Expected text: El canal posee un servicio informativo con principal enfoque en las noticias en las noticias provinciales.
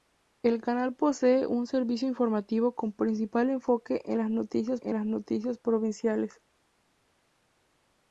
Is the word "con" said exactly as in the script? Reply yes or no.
yes